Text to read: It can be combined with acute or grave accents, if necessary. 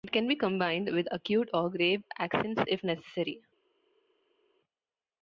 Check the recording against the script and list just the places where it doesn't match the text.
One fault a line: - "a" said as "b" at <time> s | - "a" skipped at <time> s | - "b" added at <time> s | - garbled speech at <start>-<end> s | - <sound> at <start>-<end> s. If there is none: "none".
none